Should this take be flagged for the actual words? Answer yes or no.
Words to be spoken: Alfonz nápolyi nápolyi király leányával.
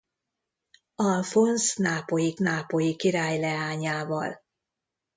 no